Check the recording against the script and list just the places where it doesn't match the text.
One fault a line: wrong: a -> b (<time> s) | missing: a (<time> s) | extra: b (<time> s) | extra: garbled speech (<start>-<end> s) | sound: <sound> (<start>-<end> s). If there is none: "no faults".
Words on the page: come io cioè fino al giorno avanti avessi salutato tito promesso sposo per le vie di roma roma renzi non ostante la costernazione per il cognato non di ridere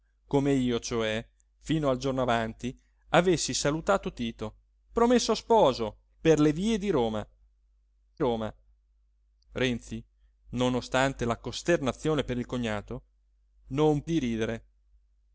no faults